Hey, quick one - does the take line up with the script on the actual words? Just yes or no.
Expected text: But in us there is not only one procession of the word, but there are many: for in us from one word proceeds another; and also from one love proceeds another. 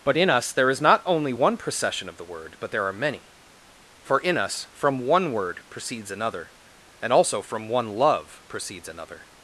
yes